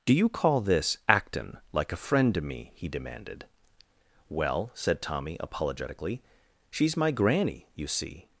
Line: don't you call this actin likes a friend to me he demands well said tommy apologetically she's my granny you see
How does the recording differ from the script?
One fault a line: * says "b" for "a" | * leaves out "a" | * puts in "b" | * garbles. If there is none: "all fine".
* says "do" for "don't"
* says "like" for "likes"
* says "demanded" for "demands"